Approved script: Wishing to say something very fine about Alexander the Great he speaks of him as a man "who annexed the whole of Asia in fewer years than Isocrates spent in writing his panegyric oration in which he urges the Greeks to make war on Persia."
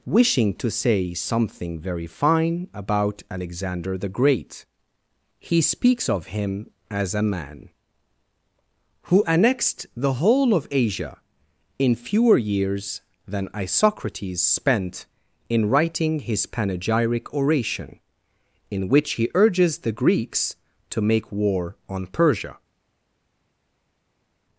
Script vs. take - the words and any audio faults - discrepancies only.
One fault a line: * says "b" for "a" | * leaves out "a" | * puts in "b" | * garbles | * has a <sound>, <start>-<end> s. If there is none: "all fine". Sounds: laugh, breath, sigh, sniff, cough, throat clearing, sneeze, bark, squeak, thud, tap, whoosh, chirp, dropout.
all fine